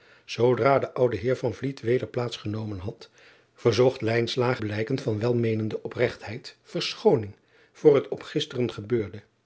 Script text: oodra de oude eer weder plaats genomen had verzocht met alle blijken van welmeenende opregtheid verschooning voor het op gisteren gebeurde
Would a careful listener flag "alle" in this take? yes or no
yes